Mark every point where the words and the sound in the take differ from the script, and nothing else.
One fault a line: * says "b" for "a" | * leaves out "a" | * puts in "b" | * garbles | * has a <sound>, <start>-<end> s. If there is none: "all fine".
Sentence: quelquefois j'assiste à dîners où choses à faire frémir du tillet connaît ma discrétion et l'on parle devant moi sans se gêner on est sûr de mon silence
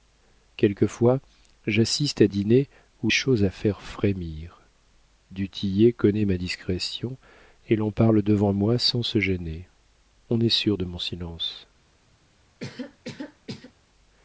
* has a cough, 12.6-13.7 s